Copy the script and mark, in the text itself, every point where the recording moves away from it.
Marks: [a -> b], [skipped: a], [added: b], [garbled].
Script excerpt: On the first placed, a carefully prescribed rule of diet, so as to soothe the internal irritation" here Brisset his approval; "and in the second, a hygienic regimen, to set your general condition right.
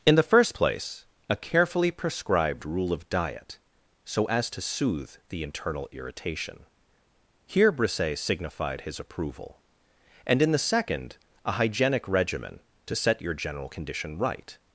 [On -> In] the first [placed, -> place] a carefully prescribed rule of diet, so as to soothe the internal irritation" here Brisset [added: signified] his approval; "and in the second, a hygienic regimen, to set your general condition right.